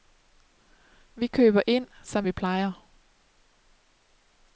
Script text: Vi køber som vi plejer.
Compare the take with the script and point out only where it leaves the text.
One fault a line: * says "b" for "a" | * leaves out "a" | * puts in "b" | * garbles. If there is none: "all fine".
* puts in "ind"